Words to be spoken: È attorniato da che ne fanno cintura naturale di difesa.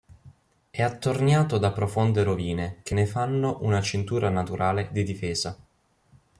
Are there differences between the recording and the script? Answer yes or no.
yes